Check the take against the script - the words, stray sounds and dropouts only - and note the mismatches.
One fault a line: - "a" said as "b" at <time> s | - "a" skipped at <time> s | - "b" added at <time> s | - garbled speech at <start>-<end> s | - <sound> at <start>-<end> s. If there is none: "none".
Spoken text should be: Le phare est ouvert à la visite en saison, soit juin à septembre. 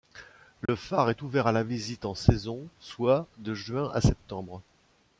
- dropout at 0.7-0.7 s
- "de" added at 3.4 s